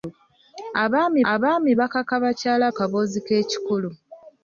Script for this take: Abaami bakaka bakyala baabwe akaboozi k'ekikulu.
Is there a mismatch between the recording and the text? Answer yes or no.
yes